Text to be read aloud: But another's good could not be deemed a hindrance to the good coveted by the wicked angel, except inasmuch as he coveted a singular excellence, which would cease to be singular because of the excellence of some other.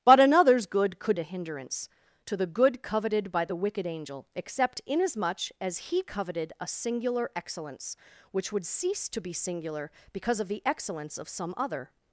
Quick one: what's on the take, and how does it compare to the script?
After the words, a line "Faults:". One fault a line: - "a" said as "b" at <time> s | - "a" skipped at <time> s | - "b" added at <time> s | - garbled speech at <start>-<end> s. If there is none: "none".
But another's good could a hindrance to the good coveted by the wicked angel, except inasmuch as he coveted a singular excellence, which would cease to be singular because of the excellence of some other.
Faults:
- "not be deemed" skipped at 1.2 s